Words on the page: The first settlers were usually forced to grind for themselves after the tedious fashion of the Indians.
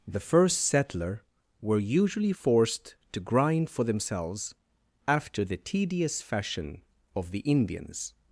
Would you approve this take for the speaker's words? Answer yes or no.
no